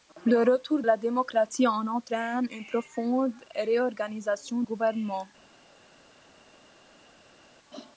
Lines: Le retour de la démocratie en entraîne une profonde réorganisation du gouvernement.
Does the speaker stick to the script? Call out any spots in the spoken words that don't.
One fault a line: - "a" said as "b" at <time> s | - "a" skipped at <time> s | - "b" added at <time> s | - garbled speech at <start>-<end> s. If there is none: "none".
- "de" skipped at 0.8 s
- "du" skipped at 4.6 s